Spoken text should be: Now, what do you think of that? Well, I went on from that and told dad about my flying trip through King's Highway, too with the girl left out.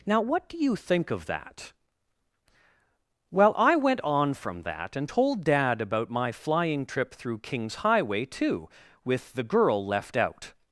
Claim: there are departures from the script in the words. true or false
false